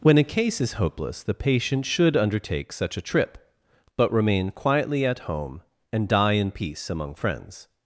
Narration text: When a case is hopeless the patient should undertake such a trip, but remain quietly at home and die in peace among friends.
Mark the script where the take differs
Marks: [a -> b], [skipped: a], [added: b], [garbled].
When a case is hopeless the patient should undertake such a trip, but remain quietly at home and die in peace among friends.